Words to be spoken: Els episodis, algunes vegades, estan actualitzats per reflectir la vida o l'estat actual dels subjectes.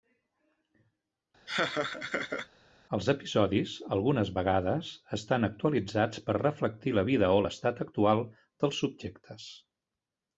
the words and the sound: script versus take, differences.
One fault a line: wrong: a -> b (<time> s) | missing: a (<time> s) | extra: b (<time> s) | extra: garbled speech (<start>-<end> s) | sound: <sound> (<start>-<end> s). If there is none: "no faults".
sound: laugh (1.5-2.5 s)